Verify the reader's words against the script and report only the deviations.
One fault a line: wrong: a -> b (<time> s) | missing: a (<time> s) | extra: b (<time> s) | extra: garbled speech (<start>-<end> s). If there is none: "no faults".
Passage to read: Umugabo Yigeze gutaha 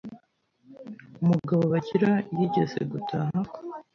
extra: Bagira (1.7 s)